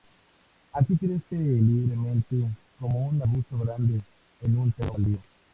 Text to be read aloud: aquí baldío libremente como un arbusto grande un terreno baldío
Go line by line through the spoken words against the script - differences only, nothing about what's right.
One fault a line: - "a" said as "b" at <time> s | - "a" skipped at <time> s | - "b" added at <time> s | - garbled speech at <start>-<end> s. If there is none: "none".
- "baldío" said as "crece" at 1.0 s
- "en" added at 4.4 s